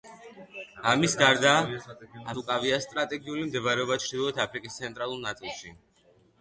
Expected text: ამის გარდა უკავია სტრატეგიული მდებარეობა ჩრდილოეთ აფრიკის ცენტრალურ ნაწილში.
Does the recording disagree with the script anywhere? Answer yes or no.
no